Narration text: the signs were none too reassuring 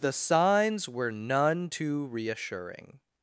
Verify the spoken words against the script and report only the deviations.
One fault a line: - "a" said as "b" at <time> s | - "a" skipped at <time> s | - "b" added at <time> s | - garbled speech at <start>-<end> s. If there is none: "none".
none